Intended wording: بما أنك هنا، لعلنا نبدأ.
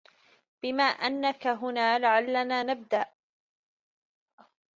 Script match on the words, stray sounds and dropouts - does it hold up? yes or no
yes